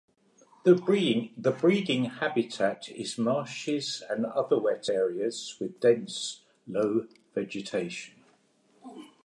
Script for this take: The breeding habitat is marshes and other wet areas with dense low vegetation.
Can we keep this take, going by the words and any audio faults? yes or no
yes